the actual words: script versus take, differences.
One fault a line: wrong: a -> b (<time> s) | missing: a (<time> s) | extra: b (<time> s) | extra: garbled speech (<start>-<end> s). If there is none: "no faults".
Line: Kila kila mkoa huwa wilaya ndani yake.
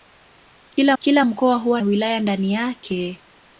no faults